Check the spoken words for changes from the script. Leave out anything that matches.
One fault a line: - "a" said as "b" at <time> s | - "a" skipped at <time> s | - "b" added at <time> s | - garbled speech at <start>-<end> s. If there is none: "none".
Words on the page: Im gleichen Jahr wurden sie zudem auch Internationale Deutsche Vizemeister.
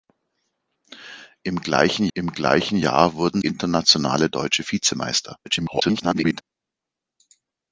- "im gleichen" added at 2.1 s
- "sie zudem auch" skipped at 3.4 s
- garbled speech at 5.4-6.4 s